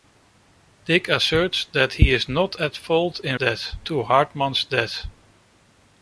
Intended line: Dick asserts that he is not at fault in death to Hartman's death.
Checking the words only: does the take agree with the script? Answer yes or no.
yes